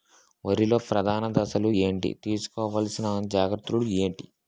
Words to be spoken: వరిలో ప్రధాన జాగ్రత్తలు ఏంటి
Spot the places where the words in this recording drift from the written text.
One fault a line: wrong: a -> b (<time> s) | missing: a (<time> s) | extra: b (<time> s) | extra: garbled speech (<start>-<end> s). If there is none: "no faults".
extra: దశలు ఏంటి తీసుకోవాల్సిన (1.3 s)